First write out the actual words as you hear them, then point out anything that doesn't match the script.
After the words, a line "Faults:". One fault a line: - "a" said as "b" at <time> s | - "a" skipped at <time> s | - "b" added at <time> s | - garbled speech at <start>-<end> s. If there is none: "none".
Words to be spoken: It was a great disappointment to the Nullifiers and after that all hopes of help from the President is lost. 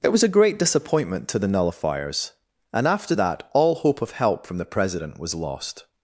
It was a great disappointment to the Nullifiers and after that all hope of help from the President was lost.
Faults:
- "hopes" said as "hope" at 3.8 s
- "is" said as "was" at 5.2 s